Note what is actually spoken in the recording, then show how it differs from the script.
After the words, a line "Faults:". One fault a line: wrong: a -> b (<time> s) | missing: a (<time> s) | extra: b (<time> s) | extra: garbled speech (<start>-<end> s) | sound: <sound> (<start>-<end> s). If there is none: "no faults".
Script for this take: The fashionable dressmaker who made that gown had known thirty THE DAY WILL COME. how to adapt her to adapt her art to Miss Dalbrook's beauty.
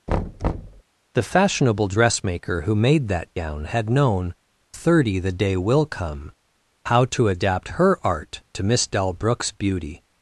The fashionable dressmaker who made that gown had known thirty THE DAY WILL COME. how to adapt her art to Miss Dalbrook's beauty.
Faults:
sound: thud (0.1-0.8 s)
missing: to adapt her (8.0 s)